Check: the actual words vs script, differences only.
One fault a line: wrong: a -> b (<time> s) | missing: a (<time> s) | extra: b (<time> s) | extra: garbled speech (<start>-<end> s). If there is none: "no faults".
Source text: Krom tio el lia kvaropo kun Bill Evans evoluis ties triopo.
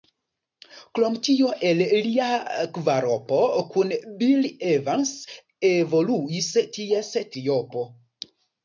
no faults